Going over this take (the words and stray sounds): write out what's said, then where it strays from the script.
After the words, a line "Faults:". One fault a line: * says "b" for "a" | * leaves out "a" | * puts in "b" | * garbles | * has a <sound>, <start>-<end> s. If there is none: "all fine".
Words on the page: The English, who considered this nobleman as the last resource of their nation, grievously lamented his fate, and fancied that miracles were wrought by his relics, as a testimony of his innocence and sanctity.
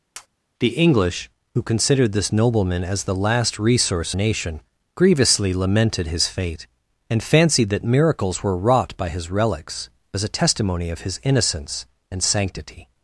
The English, who considered this nobleman as the last resource nation, grievously lamented his fate, and fancied that miracles were wrought by his relics, as a testimony of his innocence and sanctity.
Faults:
* has a tap, 0.1-0.3 s
* leaves out "of their"